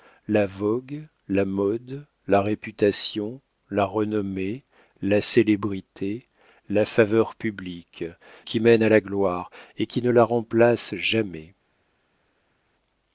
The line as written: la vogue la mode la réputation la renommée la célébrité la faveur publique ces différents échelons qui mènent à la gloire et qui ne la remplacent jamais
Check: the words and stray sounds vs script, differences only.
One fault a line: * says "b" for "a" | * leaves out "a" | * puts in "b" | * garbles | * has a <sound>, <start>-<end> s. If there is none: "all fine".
* leaves out "ces différents échelons"